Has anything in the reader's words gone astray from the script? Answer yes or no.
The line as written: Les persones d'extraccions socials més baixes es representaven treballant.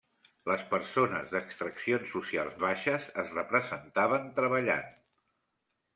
yes